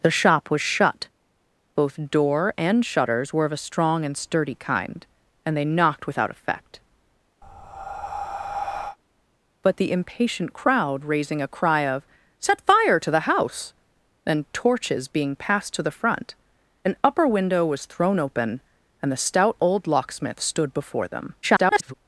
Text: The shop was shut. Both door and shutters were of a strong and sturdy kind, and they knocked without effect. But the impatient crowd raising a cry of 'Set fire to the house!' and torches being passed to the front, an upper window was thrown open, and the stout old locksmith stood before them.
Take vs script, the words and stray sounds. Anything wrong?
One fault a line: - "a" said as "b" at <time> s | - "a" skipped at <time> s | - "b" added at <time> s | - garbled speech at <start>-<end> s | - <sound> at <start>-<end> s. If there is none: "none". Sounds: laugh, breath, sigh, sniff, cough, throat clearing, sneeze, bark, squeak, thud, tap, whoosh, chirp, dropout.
- breath at 7.4-9.0 s
- garbled speech at 21.4-21.9 s